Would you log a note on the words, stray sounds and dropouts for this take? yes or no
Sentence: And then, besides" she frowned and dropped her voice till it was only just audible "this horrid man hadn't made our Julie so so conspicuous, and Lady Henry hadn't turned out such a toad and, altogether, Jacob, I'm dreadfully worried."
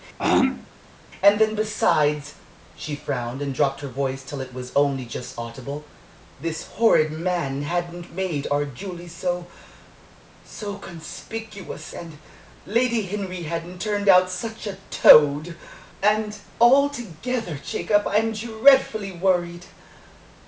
yes